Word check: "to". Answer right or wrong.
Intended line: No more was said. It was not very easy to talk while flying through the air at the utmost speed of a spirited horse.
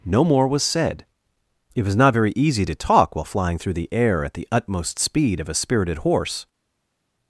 right